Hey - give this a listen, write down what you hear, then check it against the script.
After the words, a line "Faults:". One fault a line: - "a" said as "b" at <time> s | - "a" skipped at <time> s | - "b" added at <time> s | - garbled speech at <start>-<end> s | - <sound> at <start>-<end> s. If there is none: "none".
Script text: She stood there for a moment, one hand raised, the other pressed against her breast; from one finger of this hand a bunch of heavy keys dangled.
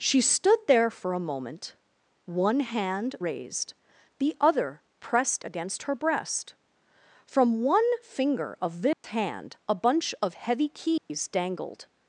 She stood there for a moment, one hand raised, the other pressed against her breast; from one finger of this hand a bunch of heavy keys dangled.
Faults:
- dropout at 8.9-9.0 s
- dropout at 11.0-11.1 s